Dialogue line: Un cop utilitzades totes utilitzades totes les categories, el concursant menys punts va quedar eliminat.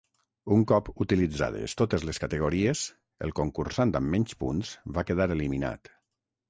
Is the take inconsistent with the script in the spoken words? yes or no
yes